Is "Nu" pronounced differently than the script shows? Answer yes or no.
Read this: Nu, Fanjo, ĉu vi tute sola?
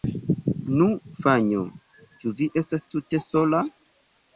no